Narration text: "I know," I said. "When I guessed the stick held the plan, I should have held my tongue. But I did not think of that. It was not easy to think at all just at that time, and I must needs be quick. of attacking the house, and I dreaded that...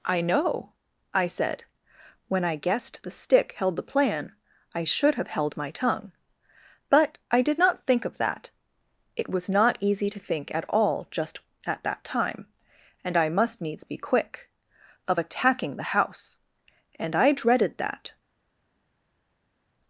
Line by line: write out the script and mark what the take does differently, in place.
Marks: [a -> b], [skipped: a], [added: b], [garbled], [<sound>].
"I know," I said. "When I guessed the stick held the plan, I should have held my tongue. But I did not think of that. It was not easy to think at all just at that time, and I must needs be quick. of attacking the house, and I dreaded that...